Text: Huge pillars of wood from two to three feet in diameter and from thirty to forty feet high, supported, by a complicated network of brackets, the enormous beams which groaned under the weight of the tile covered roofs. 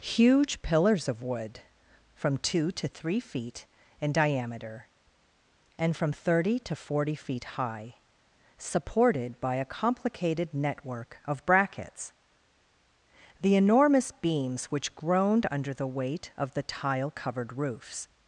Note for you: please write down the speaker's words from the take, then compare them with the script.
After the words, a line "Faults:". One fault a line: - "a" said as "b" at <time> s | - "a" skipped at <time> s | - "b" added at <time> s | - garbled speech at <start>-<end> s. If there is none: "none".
Huge pillars of wood from two to three feet in diameter and from thirty to forty feet high, supported, by a complicated network of brackets, the enormous beams which groaned under the weight of the tile covered roofs.
Faults:
none